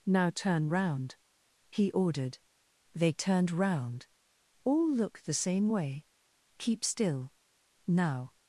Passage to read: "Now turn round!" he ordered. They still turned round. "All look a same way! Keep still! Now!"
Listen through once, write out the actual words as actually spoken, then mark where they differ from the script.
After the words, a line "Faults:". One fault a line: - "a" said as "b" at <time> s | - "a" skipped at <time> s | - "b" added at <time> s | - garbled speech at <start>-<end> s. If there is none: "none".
"Now turn round!" he ordered. They turned round. "All look the same way! Keep still! Now!"
Faults:
- "still" skipped at 3.1 s
- "a" said as "the" at 5.2 s